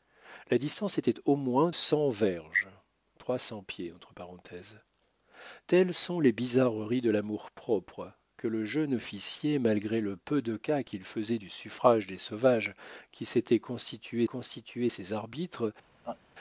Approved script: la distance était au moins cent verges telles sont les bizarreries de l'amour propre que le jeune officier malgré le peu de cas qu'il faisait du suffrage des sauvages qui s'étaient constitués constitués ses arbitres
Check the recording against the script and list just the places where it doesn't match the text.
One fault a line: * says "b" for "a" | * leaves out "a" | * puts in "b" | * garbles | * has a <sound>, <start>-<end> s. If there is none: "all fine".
* has a laugh, 16.0-16.2 s